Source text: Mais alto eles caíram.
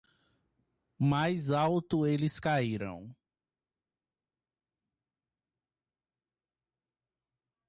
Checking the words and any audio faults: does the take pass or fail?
pass